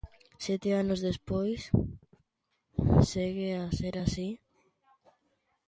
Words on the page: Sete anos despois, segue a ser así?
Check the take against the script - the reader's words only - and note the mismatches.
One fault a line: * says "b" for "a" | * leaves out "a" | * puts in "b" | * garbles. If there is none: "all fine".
all fine